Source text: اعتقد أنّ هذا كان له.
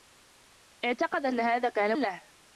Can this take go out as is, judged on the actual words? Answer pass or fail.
pass